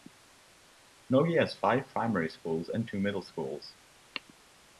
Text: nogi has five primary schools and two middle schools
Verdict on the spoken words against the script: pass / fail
pass